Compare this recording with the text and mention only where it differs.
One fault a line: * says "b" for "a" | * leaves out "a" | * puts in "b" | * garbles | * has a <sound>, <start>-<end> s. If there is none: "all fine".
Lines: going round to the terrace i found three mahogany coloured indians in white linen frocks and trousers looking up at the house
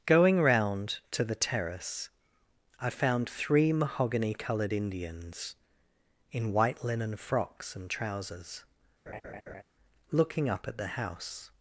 * has a laugh, 9.1-9.6 s